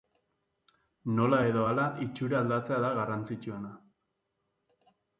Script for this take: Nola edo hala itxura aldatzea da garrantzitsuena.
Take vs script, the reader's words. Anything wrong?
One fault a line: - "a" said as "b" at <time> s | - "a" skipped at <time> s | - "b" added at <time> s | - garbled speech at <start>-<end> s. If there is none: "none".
none